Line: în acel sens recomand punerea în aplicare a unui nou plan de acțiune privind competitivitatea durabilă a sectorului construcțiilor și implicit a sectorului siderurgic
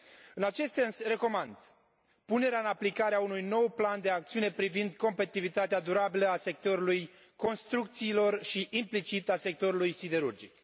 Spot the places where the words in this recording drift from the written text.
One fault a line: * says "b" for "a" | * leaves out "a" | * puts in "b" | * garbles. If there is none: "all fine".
* says "acest" for "acel"